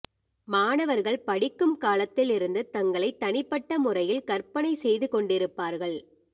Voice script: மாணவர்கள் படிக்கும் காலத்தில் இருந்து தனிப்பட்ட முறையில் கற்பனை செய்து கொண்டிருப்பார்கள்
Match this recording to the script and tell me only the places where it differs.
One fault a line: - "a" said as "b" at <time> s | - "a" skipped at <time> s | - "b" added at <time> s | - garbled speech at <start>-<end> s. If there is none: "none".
- "தங்களை" added at 2.7 s